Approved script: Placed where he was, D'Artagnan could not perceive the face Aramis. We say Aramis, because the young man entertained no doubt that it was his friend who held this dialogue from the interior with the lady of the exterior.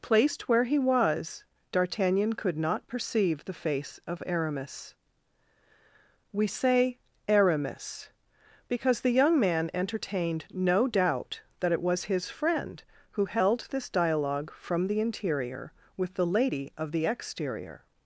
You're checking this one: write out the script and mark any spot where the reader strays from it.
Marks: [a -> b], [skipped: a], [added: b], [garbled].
Placed where he was, D'Artagnan could not perceive the face [added: of] Aramis. We say Aramis, because the young man entertained no doubt that it was his friend who held this dialogue from the interior with the lady of the exterior.